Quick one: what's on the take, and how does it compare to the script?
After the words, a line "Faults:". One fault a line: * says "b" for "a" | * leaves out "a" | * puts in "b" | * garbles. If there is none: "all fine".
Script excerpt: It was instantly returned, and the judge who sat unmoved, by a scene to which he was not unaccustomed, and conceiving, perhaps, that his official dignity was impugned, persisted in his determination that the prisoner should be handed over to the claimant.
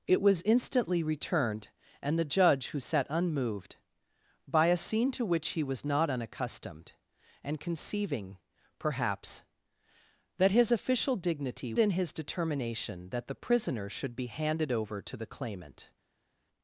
It was instantly returned, and the judge who sat unmoved, by a scene to which he was not unaccustomed, and conceiving, perhaps, that his official dignity in his determination that the prisoner should be handed over to the claimant.
Faults:
* leaves out "was impugned persisted"